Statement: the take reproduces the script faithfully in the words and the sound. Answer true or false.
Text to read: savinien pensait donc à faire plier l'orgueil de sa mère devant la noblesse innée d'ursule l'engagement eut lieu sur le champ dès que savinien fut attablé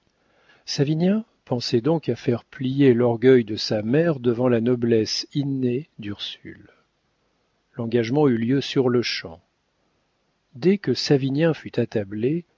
true